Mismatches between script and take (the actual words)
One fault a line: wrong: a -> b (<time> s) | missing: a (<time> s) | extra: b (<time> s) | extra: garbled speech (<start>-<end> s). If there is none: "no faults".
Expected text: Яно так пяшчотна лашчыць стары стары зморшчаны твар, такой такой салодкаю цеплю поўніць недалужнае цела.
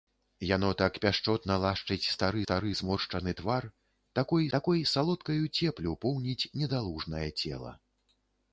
no faults